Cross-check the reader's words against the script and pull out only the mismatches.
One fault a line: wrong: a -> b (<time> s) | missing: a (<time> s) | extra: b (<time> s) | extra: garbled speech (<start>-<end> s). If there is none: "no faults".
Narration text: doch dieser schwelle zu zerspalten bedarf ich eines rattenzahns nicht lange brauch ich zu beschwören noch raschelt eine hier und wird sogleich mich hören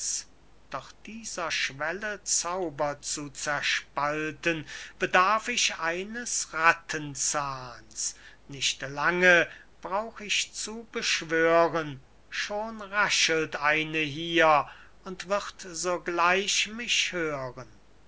extra: zauber (2.2 s)
wrong: noch -> schon (12.3 s)